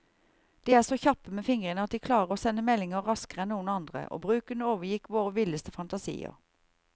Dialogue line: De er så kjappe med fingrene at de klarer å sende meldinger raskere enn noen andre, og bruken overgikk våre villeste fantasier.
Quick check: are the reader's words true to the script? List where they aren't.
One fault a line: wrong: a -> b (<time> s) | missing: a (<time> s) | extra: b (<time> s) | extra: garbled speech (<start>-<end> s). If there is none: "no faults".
no faults